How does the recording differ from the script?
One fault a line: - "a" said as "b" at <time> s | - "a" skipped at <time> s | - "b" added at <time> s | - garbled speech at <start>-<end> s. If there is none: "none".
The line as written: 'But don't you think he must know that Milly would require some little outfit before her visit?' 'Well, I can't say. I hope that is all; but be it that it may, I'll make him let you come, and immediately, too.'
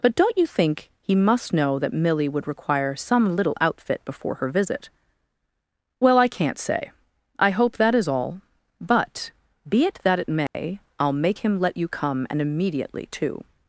none